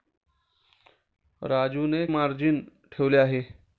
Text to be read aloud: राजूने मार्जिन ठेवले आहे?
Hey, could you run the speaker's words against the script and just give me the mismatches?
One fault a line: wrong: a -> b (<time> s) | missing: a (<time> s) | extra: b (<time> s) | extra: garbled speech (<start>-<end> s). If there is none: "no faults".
no faults